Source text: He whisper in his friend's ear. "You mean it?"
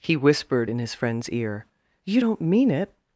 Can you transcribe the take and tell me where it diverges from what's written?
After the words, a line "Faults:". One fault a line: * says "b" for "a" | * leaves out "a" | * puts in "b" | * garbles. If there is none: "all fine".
He whispered in his friend's ear. "You don't mean it?"
Faults:
* says "whispered" for "whisper"
* puts in "don't"